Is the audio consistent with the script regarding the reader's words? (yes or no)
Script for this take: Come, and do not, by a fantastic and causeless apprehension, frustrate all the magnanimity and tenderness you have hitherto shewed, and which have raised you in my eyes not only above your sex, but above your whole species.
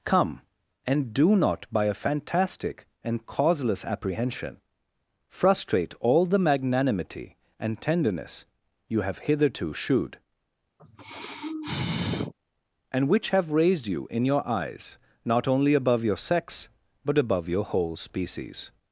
no